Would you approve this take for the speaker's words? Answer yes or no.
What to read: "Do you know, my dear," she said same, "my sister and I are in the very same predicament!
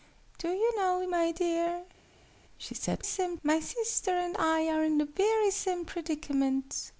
yes